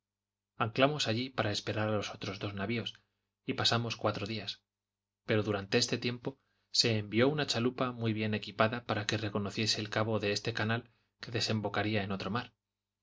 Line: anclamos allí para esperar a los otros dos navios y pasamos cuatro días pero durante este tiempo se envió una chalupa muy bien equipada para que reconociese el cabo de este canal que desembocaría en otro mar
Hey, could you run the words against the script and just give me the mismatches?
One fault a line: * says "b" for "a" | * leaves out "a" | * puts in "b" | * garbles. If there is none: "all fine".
all fine